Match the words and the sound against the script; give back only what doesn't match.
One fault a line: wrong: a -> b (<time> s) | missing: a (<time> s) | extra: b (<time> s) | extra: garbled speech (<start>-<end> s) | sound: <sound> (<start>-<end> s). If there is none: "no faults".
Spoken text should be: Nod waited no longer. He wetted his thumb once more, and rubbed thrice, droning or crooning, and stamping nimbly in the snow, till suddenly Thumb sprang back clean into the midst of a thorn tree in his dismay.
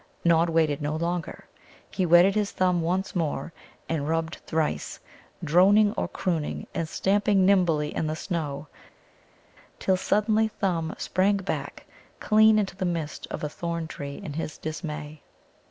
no faults